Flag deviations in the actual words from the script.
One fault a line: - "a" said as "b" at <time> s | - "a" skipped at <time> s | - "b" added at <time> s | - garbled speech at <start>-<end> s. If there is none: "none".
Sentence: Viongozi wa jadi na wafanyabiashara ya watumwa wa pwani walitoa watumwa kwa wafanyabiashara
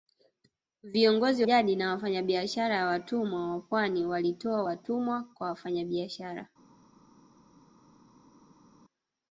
- "wa" skipped at 1.4 s